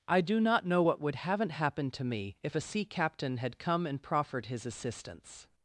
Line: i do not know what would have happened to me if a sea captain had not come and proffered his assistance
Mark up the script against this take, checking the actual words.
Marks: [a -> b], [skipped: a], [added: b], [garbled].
i do not know what would [have -> haven't] happened to me if a sea captain had [skipped: not] come and proffered his assistance